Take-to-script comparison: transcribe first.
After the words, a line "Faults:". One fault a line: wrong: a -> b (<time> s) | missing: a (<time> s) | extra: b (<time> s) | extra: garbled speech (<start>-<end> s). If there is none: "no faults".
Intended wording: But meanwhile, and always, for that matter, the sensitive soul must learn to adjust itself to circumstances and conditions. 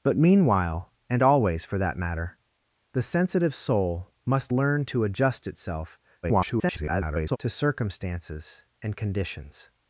But meanwhile, and always, for that matter, the sensitive soul must learn to adjust itself [garbled] to circumstances and conditions.
Faults:
extra: garbled speech (6.2-7.4 s)